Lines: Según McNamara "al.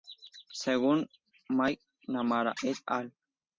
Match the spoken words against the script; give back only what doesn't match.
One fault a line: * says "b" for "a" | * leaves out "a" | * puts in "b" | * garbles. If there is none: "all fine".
* puts in "et"